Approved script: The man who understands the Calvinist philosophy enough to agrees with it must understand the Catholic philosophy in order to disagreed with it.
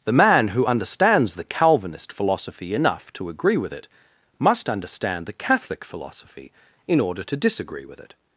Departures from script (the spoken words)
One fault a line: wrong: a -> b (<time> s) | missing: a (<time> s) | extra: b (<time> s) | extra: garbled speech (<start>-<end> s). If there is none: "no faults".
wrong: agrees -> agree (3.3 s)
wrong: disagreed -> disagree (7.3 s)